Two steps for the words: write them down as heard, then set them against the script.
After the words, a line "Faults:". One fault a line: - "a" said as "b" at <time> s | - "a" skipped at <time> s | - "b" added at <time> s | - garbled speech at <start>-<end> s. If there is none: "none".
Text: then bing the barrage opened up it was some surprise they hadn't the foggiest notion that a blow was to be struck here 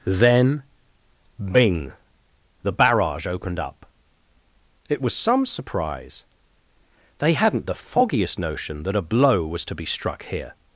then bing the barrage opened up it was some surprise they hadn't the foggiest notion that a blow was to be struck here
Faults:
none